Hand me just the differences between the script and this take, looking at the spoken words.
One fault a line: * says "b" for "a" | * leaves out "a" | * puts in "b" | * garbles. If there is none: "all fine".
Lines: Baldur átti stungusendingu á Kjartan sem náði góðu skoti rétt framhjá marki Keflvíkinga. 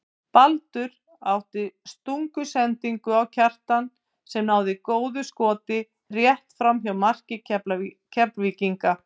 all fine